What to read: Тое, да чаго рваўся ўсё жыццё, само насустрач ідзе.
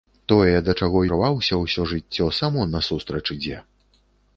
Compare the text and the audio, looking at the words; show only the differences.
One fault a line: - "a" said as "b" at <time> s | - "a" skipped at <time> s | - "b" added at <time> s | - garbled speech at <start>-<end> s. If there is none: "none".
none